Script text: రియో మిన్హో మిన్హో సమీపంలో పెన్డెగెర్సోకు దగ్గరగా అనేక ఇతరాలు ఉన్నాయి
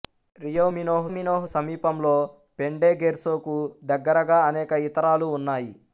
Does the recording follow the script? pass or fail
pass